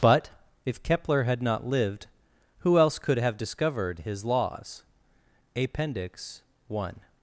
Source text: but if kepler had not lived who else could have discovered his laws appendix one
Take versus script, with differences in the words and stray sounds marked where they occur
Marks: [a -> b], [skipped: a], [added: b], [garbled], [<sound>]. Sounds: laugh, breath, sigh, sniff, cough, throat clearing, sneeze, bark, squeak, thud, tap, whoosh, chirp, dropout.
but if kepler had not lived who else could have discovered his laws appendix one